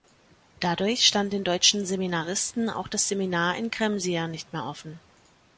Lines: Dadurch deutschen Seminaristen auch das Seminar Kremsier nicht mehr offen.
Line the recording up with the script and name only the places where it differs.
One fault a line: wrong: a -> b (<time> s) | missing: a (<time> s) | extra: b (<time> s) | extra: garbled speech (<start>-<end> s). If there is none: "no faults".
extra: stand den (1.1 s)
extra: in (3.5 s)